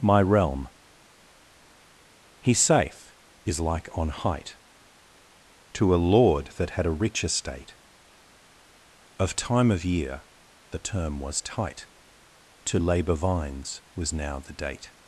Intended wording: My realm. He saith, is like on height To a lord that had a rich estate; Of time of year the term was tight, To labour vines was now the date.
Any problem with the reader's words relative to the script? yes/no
no